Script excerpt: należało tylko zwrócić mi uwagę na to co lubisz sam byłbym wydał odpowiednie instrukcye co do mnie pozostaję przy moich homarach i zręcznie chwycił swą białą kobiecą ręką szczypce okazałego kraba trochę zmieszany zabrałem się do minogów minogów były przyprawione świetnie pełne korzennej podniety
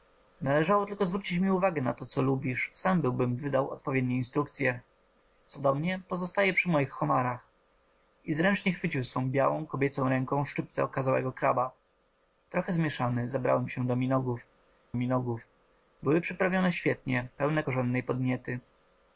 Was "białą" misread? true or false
false